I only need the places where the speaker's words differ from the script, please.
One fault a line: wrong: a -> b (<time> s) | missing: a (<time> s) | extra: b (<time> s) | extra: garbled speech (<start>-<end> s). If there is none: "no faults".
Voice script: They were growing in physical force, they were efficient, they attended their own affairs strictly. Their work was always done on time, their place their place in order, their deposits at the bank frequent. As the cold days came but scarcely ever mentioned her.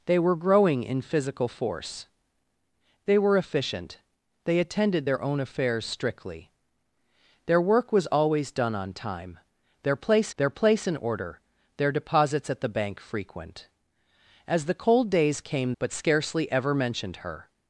no faults